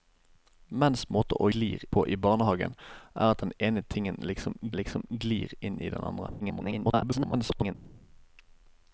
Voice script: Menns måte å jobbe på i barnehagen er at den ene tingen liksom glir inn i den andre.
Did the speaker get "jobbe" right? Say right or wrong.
wrong